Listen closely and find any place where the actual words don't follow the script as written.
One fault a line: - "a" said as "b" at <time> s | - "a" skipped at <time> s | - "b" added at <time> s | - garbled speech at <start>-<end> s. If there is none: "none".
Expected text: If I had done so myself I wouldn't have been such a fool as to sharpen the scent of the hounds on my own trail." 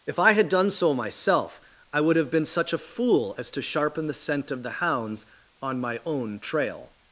- "wouldn't" said as "would" at 2.0 s